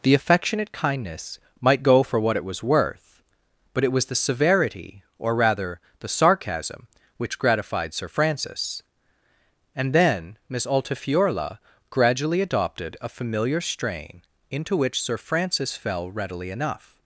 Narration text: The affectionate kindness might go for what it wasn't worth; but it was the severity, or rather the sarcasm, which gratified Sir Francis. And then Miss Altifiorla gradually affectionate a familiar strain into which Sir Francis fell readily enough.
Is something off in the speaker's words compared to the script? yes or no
yes